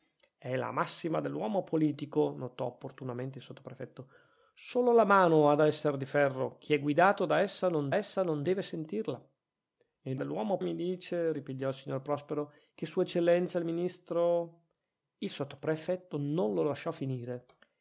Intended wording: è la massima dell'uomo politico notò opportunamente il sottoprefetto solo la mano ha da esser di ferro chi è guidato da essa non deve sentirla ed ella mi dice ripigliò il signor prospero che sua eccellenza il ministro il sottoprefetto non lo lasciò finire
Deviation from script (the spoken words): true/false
true